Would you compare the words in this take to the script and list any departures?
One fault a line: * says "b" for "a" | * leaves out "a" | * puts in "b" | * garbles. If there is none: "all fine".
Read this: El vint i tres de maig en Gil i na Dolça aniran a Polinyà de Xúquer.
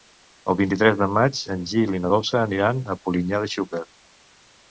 all fine